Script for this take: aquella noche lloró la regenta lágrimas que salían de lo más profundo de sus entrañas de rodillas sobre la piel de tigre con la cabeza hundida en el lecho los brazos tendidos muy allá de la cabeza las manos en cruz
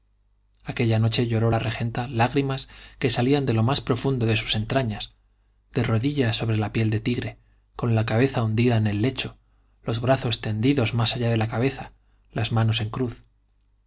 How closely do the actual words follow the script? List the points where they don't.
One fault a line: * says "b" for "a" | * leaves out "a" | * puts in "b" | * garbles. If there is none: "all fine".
* says "más" for "muy"